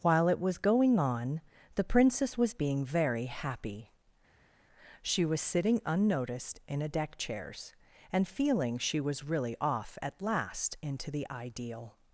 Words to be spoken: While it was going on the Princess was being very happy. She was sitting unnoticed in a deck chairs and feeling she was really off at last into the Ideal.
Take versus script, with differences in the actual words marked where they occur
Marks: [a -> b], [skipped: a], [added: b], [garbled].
While it was going on the Princess was being very happy. She was sitting unnoticed in a deck chairs and feeling she was really off at last into the Ideal.